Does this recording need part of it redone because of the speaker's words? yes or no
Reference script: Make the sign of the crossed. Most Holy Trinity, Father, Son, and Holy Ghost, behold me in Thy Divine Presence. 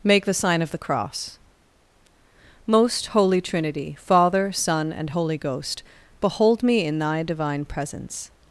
yes